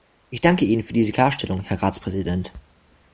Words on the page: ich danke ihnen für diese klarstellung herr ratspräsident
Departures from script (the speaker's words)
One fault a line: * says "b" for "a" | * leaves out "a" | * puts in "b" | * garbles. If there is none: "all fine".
all fine